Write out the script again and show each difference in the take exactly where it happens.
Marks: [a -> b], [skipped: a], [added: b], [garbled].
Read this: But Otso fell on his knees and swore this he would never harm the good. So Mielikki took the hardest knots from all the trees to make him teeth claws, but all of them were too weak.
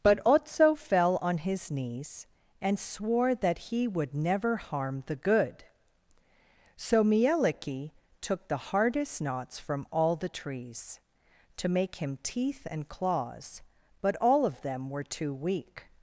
But Otso fell on his knees and swore [this -> that] he would never harm the good. So Mielikki took the hardest knots from all the trees to make him teeth [added: and] claws, but all of them were too weak.